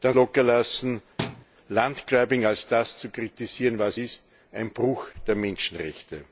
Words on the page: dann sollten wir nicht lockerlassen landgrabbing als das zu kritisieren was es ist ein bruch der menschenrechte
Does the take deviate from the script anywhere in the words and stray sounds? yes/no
yes